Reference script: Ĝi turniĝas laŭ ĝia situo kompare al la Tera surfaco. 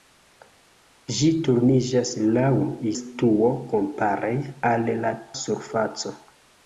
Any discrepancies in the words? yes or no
yes